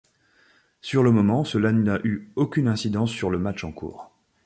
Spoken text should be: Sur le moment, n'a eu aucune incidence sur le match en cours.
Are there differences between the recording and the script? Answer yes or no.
yes